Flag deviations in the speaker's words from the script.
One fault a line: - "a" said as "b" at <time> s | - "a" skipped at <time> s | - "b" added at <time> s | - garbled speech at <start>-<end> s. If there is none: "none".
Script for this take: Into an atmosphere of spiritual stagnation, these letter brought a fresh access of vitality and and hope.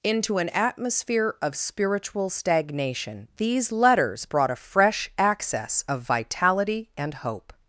- "letter" said as "letters" at 3.7 s
- "and" skipped at 7.1 s